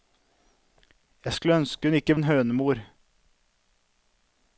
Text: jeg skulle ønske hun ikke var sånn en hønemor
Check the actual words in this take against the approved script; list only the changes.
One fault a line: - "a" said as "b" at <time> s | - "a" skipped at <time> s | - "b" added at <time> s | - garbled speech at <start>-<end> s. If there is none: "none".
- "var sånn" skipped at 2.2 s